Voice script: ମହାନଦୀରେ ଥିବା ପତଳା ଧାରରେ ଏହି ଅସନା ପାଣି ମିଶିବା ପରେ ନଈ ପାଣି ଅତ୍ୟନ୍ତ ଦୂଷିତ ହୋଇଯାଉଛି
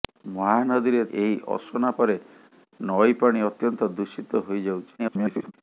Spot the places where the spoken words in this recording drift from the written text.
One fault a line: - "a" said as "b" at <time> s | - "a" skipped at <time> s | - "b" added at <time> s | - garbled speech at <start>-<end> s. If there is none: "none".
- "ଥିବା ପତଳା ଧାରରେ" skipped at 1.0 s
- "ପାଣି ମିଶିବା" skipped at 1.9 s
- garbled speech at 5.0-5.5 s